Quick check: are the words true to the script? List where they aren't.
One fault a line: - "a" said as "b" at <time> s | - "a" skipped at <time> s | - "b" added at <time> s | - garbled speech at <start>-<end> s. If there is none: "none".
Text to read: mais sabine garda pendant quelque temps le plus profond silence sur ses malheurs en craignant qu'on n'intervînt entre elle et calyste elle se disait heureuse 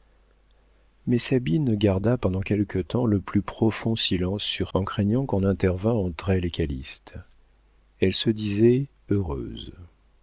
- "ses malheurs" skipped at 4.7 s